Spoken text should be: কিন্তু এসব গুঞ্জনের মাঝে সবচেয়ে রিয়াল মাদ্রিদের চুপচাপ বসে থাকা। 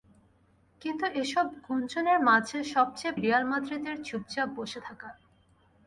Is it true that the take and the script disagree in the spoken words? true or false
false